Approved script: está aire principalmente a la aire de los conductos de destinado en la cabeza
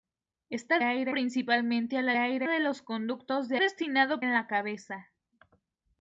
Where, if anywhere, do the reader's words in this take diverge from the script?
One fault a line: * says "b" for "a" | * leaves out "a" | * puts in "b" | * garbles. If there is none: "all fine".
all fine